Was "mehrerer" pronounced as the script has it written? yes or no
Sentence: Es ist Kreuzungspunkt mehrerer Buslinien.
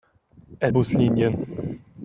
no